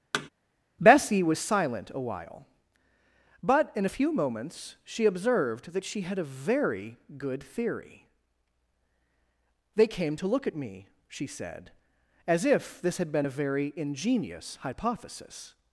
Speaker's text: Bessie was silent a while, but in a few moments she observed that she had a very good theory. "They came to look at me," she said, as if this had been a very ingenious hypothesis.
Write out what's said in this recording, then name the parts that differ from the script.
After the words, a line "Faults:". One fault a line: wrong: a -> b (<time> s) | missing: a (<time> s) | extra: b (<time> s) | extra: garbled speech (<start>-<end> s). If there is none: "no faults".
Bessie was silent a while, but in a few moments she observed that she had a very good theory. "They came to look at me," she said, as if this had been a very ingenious hypothesis.
Faults:
no faults